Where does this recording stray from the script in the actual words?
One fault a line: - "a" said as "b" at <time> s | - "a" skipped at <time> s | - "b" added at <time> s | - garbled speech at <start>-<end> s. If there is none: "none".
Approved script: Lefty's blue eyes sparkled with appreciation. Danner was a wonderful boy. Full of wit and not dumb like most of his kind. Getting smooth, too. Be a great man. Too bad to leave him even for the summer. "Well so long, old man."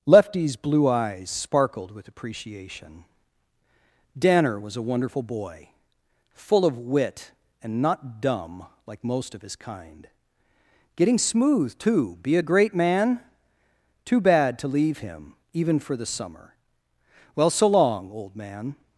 none